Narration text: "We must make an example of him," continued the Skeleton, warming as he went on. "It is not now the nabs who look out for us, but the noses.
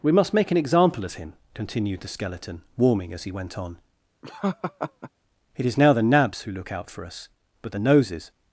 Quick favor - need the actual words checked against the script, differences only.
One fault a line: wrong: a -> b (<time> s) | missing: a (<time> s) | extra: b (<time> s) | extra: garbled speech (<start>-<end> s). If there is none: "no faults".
missing: not (5.8 s)